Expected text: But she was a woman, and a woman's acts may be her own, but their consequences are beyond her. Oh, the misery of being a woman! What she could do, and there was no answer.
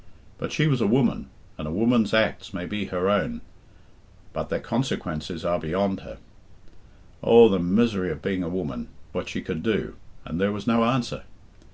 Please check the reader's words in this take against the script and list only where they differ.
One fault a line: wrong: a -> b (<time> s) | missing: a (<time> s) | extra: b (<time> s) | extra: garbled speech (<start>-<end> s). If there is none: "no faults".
no faults